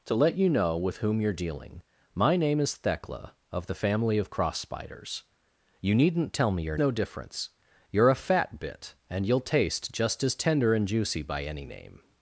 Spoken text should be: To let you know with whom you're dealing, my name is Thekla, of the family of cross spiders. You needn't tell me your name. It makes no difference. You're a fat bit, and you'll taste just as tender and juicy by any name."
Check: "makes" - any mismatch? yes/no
yes